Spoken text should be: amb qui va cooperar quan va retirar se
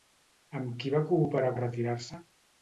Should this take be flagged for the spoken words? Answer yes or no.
yes